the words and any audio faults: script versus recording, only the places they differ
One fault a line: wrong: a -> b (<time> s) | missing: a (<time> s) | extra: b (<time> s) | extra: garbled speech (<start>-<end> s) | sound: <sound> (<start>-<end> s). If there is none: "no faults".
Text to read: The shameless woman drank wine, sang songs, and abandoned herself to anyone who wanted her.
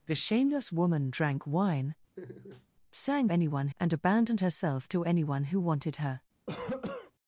sound: laugh (2.2-2.7 s)
wrong: songs -> anyone (3.3 s)
sound: cough (6.5-7.1 s)